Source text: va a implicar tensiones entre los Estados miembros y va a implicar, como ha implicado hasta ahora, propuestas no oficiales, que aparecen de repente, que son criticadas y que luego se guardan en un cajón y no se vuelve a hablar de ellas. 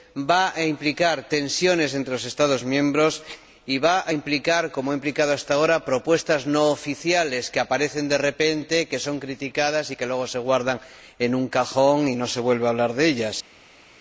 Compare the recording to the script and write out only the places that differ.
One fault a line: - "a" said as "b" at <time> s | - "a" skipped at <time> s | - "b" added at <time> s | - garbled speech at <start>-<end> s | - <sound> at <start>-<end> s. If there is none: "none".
none